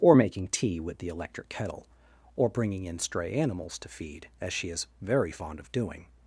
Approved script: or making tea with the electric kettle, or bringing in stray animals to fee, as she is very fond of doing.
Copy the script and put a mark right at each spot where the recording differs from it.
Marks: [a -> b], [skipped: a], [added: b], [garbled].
or making tea with the electric kettle, or bringing in stray animals to [fee, -> feed] as she is very fond of doing.